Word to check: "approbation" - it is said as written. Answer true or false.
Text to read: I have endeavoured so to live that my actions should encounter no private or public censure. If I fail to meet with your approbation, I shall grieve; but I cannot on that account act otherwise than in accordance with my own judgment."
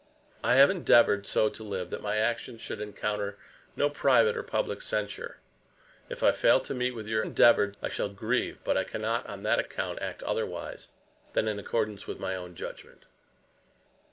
false